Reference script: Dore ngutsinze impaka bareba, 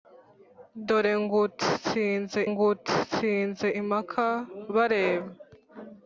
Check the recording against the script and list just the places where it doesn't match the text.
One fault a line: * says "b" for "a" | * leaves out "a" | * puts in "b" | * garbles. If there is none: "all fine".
* puts in "ngutsinze"